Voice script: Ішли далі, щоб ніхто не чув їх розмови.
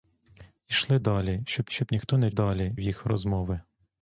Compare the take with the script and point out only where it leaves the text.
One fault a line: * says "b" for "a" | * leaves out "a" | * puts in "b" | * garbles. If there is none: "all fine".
* puts in "щоб"
* says "далі" for "чув"